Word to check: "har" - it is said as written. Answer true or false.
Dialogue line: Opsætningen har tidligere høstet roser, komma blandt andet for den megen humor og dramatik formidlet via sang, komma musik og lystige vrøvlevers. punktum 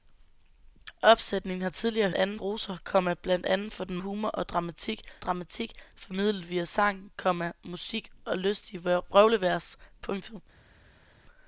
true